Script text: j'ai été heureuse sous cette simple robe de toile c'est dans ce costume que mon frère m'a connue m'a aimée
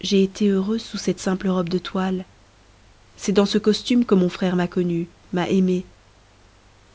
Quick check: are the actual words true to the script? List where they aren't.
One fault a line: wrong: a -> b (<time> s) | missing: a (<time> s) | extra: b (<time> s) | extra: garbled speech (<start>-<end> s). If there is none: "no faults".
no faults